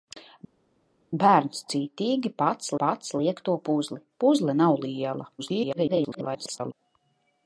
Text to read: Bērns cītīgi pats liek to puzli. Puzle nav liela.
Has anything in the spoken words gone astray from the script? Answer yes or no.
yes